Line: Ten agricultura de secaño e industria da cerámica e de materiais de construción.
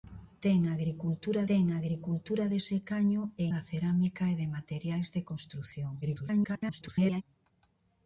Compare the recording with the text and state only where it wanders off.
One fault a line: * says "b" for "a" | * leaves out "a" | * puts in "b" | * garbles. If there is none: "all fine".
* puts in "ten agricultura"
* leaves out "industria"
* garbles